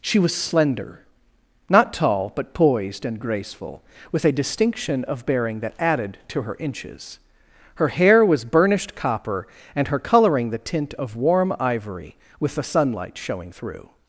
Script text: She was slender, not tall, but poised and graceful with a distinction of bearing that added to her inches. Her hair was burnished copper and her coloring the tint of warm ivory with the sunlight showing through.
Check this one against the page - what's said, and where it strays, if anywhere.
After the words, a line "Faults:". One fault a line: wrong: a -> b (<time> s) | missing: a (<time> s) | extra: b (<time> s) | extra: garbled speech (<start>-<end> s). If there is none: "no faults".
She was slender, not tall, but poised and graceful with a distinction of bearing that added to her inches. Her hair was burnished copper and her coloring the tint of warm ivory with the sunlight showing through.
Faults:
no faults